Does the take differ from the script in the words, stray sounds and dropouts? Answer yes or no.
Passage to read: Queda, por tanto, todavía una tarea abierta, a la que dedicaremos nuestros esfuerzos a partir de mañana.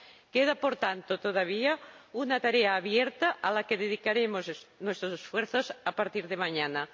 no